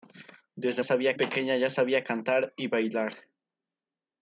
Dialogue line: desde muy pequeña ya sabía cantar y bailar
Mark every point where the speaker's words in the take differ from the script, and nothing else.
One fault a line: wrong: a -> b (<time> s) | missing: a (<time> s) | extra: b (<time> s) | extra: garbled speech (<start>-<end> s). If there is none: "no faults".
wrong: muy -> sabía (0.8 s)